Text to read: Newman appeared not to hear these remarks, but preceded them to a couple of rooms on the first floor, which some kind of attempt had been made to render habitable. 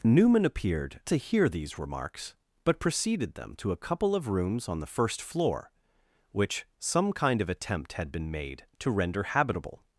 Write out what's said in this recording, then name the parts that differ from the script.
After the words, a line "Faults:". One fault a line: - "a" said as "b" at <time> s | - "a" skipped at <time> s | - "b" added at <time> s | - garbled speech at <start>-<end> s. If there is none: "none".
Newman appeared to hear these remarks, but preceded them to a couple of rooms on the first floor, which some kind of attempt had been made to render habitable.
Faults:
- "not" skipped at 1.0 s